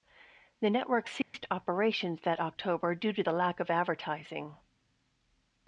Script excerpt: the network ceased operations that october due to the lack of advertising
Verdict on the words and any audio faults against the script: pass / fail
fail